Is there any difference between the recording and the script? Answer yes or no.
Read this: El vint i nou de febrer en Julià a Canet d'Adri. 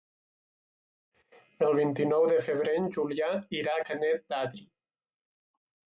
yes